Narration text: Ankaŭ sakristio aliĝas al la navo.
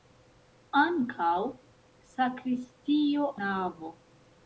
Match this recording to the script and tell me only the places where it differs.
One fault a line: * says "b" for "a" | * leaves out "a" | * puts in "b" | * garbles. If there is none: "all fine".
* leaves out "aliĝas al la"